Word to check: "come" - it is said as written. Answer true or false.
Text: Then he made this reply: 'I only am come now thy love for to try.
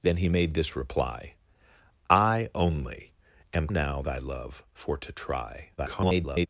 false